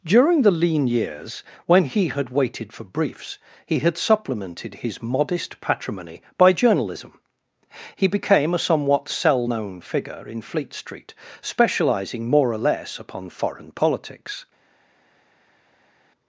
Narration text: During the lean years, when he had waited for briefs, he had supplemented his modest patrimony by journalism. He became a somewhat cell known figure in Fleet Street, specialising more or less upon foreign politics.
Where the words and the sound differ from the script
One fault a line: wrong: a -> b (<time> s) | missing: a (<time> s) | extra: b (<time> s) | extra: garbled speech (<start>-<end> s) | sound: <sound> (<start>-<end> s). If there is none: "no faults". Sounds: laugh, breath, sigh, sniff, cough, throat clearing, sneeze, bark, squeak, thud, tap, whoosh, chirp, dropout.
no faults